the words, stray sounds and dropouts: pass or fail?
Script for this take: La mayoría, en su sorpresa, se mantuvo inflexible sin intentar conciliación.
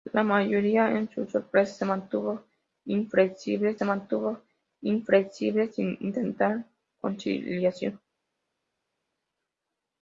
fail